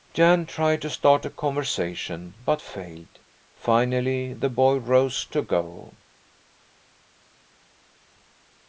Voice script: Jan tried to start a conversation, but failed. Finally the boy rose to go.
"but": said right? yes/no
yes